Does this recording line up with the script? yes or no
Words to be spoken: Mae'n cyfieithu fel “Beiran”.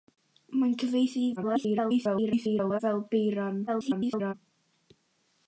no